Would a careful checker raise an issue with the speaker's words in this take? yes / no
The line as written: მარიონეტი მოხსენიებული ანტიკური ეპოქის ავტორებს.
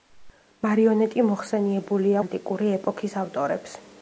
no